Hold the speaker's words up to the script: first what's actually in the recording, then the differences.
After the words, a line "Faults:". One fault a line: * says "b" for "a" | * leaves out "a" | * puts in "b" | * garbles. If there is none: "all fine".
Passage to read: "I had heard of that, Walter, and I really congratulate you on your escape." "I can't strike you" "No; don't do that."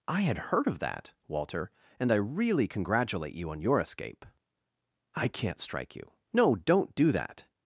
"I had heard of that, Walter, and I really congratulate you on your escape." "I can't strike you" "No; don't do that."
Faults:
all fine